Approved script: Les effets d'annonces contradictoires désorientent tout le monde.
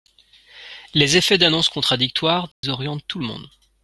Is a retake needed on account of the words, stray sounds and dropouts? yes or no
yes